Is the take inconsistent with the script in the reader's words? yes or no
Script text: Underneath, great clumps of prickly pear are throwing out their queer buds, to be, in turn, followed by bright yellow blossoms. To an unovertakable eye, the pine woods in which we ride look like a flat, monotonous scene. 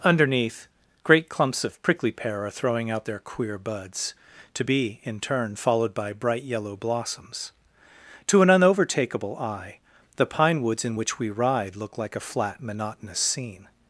no